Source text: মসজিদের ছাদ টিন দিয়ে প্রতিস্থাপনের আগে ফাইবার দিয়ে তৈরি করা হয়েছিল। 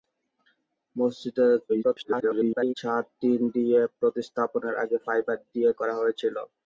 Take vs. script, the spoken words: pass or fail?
fail